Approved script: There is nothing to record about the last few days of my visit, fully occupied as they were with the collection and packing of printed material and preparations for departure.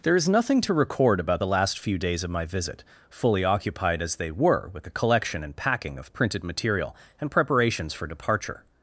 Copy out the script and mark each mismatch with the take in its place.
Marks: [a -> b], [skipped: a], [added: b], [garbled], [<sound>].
There is nothing to record about the last few days of my visit, fully occupied as they were with the collection and packing of printed material and preparations for departure.